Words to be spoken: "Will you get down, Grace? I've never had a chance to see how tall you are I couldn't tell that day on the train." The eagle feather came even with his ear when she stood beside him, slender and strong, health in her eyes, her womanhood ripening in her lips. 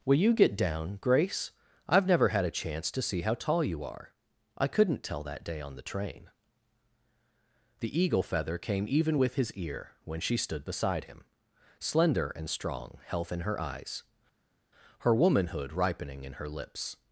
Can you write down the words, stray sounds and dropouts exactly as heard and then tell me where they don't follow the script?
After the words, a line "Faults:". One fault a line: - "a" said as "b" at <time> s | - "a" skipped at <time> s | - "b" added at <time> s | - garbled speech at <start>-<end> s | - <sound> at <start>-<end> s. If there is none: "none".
"Will you get down, Grace? I've never had a chance to see how tall you are I couldn't tell that day on the train." The eagle feather came even with his ear when she stood beside him, slender and strong, health in her eyes, her womanhood ripening in her lips.
Faults:
none